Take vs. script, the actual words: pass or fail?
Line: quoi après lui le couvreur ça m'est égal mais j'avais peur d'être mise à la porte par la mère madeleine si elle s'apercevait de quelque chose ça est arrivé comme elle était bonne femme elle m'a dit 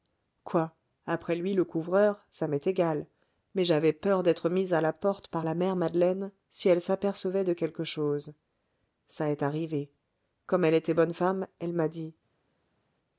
pass